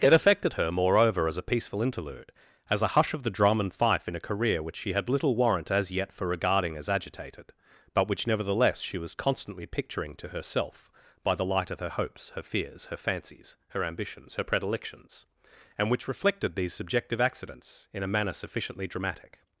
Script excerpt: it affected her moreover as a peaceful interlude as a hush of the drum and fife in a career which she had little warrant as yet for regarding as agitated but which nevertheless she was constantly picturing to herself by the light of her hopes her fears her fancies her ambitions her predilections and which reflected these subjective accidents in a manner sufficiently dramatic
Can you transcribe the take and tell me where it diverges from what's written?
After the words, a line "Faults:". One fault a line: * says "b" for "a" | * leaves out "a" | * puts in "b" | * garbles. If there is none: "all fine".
it affected her moreover as a peaceful interlude as a hush of the drum and fife in a career which she had little warrant as yet for regarding as agitated but which nevertheless she was constantly picturing to herself by the light of her hopes her fears her fancies her ambitions her predilections and which reflected these subjective accidents in a manner sufficiently dramatic
Faults:
all fine